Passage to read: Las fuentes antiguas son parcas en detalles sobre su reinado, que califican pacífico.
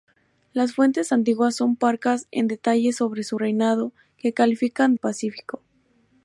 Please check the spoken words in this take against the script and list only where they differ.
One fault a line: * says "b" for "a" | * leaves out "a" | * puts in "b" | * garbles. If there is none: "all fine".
all fine